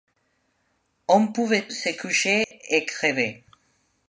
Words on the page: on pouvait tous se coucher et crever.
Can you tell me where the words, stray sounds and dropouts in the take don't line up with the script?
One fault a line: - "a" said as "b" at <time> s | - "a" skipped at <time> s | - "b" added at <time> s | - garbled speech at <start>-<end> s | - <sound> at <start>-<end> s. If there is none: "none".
- "tous" skipped at 1.7 s
- dropout at 2.4-2.5 s